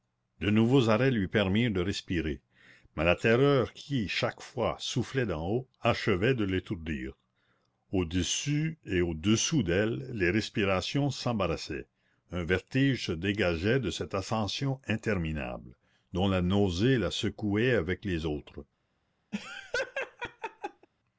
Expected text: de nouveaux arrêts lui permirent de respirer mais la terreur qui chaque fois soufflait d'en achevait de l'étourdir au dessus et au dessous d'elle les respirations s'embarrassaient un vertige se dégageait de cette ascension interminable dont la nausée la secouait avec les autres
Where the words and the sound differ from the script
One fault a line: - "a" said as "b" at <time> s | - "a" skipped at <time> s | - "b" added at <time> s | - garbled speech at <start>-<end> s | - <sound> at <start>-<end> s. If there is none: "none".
- "haut" added at 5.5 s
- laugh at 19.3-20.9 s